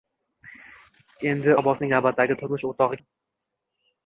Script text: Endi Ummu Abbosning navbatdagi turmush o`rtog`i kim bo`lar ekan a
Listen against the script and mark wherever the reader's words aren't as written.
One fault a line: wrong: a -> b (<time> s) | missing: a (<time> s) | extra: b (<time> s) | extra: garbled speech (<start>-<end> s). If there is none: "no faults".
missing: Ummu (1.5 s)
missing: kim bo`lar ekan (3.0 s)